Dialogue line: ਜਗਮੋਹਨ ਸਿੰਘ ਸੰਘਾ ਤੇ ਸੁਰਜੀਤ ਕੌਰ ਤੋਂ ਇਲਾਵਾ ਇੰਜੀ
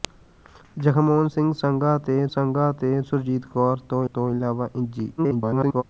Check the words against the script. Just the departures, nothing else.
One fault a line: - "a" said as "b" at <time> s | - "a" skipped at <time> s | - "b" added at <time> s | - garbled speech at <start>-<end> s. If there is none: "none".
- "ਸੰਘਾ ਤੇ" added at 2.3 s
- "ਤੋਂ" added at 4.1 s
- garbled speech at 5.2-5.8 s